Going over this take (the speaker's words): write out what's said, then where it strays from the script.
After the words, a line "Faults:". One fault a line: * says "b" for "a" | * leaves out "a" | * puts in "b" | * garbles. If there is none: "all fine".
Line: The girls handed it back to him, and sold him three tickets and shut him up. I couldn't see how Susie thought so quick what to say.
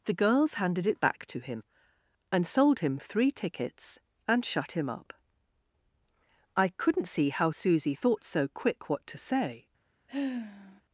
The girls handed it back to him, and sold him three tickets and shut him up. I couldn't see how Susie thought so quick what to say.
Faults:
all fine